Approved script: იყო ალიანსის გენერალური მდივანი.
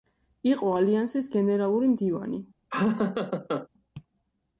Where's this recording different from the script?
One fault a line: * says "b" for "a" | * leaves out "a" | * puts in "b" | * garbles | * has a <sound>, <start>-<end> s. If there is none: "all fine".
* has a laugh, 2.7-3.7 s